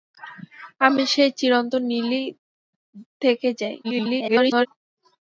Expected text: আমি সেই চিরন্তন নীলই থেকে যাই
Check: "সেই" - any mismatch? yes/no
no